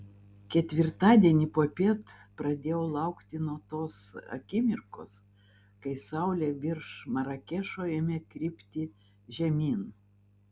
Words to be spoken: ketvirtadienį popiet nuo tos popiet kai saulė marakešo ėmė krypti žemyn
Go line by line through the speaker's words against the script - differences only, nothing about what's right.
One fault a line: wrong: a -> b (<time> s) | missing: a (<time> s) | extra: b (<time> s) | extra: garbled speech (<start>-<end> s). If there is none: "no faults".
extra: pradėjau laukti (2.4 s)
wrong: popiet -> akimirkos (4.4 s)
extra: virš (6.6 s)